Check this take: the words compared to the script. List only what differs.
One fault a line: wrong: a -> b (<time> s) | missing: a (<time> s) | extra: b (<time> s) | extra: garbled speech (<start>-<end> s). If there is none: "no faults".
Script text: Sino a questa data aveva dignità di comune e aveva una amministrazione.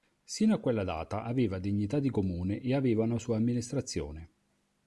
wrong: questa -> quella (0.6 s)
extra: sua (3.2 s)